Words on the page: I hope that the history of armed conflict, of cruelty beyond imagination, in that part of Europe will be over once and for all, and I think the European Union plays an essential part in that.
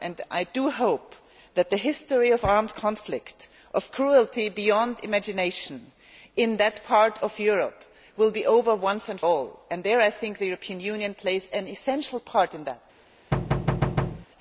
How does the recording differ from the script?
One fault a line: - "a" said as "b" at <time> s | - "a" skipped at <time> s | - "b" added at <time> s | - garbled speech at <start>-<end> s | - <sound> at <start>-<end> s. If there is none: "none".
- "for" skipped at 9.2 s
- thud at 13.3-14.3 s